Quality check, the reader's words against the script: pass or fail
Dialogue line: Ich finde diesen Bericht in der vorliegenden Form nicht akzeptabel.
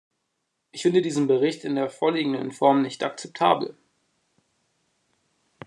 pass